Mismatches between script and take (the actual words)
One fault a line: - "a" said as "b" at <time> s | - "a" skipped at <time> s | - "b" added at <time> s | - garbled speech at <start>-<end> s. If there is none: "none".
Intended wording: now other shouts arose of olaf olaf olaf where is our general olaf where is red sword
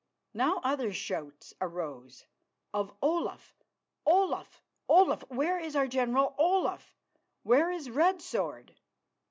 none